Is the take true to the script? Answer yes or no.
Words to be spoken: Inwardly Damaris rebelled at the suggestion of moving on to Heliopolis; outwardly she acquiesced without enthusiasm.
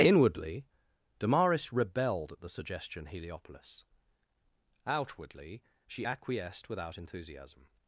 no